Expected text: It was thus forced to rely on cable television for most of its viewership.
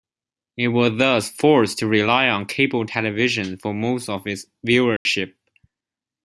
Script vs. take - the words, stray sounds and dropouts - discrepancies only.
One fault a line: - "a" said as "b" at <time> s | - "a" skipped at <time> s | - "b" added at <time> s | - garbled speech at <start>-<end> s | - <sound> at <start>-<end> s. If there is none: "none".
- dropout at 5.0-5.1 s